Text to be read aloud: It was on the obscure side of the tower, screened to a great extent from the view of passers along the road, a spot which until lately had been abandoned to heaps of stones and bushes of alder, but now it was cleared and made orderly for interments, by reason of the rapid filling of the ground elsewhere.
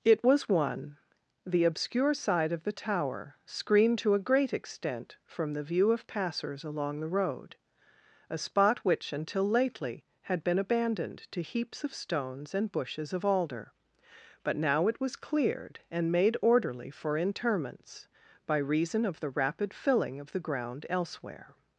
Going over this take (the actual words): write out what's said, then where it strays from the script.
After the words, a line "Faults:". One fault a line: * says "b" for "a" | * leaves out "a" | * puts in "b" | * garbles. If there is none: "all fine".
It was one the obscure side of the tower, screened to a great extent from the view of passers along the road, a spot which until lately had been abandoned to heaps of stones and bushes of alder, but now it was cleared and made orderly for interments, by reason of the rapid filling of the ground elsewhere.
Faults:
* says "one" for "on"